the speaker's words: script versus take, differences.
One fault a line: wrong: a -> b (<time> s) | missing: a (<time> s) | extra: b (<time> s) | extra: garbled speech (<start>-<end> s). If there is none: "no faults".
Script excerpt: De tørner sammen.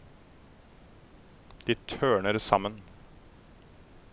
no faults